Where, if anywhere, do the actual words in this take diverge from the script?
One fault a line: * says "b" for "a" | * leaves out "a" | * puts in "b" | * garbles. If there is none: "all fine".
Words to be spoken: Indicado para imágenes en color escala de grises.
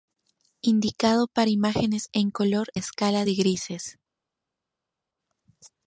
all fine